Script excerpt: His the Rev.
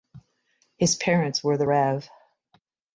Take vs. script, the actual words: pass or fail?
fail